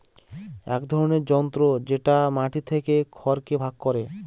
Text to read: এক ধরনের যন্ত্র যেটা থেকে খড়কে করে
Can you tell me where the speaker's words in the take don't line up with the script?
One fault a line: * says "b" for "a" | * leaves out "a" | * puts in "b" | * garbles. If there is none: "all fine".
* puts in "মাটি"
* puts in "ভাগ"